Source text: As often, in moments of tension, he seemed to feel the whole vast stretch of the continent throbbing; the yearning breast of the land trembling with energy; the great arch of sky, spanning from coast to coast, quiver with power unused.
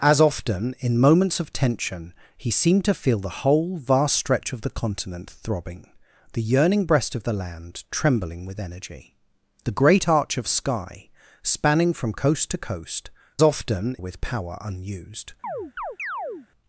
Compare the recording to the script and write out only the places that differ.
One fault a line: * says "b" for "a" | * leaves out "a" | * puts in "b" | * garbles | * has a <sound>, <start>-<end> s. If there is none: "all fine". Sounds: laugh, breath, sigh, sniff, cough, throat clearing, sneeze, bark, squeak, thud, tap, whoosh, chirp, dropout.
* says "often" for "quiver"
* has a chirp, 15.4-16.5 s